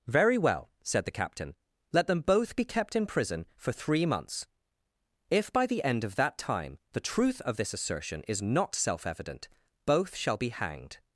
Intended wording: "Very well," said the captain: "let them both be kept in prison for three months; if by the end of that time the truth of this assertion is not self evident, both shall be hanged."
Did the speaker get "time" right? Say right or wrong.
right